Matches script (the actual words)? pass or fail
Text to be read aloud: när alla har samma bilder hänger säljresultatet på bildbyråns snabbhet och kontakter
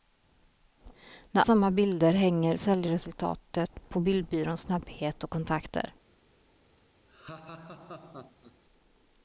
fail